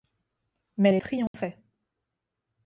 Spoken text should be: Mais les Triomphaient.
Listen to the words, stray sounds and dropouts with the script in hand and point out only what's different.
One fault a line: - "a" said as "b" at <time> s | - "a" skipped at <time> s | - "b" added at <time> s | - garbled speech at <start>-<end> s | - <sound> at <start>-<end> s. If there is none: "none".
- dropout at 1.3-1.3 s